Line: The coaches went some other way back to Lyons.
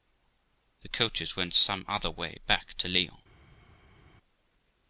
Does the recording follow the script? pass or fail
pass